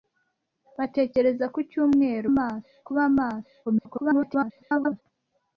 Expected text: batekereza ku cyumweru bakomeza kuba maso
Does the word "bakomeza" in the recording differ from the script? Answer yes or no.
yes